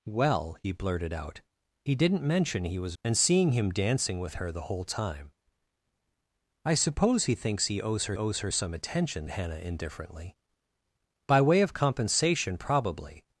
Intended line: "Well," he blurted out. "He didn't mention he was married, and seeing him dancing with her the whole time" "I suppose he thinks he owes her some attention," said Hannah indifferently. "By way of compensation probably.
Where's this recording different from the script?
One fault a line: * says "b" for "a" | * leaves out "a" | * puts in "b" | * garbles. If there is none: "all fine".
* leaves out "married"
* puts in "owes her"
* leaves out "said"